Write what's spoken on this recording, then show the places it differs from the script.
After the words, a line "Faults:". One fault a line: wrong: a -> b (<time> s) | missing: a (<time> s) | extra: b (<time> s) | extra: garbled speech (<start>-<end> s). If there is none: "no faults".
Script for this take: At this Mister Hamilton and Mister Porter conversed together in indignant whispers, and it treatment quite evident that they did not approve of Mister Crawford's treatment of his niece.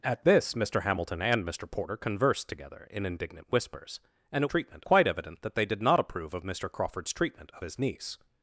At this Mister Hamilton and Mister Porter conversed together in indignant whispers, and it treatment quite evident that they did not approve of Mister Crawford's treatment of his niece.
Faults:
no faults